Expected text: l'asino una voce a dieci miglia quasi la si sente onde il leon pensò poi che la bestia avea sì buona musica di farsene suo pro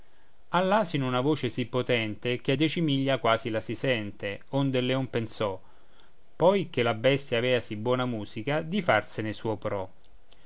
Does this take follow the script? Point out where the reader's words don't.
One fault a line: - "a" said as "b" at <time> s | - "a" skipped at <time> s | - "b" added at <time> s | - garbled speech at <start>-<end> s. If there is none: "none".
- "sì potente che" added at 1.5 s